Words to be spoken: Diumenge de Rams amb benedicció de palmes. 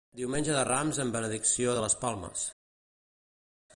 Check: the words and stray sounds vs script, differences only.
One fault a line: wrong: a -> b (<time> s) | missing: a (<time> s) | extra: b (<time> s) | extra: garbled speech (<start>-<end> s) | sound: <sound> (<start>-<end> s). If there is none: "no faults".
extra: les (1.8 s)